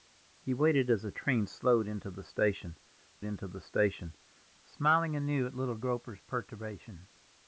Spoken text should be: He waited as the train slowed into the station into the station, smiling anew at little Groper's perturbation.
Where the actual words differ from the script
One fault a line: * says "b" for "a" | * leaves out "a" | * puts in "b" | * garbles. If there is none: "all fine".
all fine